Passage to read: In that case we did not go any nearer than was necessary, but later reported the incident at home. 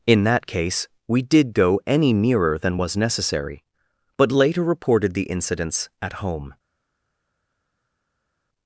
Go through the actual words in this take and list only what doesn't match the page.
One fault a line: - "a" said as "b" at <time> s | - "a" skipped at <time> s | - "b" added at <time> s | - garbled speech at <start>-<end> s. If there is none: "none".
- "not" skipped at 1.5 s
- "incident" said as "incidents" at 5.2 s